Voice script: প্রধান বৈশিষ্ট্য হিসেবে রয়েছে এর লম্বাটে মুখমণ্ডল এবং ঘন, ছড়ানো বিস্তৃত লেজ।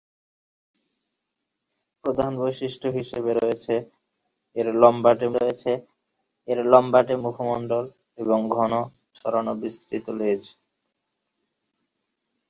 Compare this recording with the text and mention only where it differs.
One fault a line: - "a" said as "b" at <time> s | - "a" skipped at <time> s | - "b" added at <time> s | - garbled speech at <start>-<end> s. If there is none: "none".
- "রয়েছে এর লম্বাটে" added at 5.3 s